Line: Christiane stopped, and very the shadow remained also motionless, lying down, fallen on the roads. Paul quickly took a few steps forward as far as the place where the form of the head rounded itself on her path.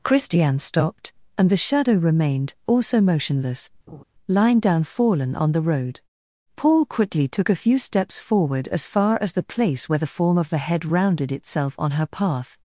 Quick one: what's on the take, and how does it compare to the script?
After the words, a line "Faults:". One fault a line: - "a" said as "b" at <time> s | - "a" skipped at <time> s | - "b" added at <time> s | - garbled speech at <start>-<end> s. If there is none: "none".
Christiane stopped, and the shadow remained also motionless, lying down, fallen on the road. Paul quickly took a few steps forward as far as the place where the form of the head rounded itself on her path.
Faults:
- "very" skipped at 1.5 s
- "roads" said as "road" at 5.6 s